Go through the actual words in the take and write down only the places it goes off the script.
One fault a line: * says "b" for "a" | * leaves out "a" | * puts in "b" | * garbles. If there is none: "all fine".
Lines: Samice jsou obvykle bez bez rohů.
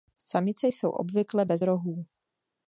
* leaves out "bez"